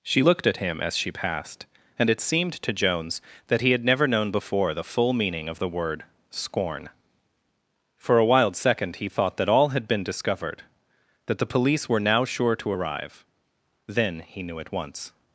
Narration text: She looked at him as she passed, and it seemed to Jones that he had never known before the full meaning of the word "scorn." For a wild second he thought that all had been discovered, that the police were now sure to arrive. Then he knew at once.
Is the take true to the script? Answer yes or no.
yes